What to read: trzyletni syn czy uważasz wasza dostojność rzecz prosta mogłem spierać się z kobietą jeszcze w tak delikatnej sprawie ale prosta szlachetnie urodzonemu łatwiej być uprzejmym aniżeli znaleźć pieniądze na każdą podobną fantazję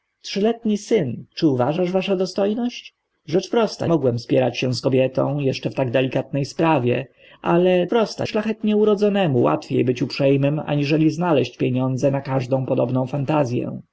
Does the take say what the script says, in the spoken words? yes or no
yes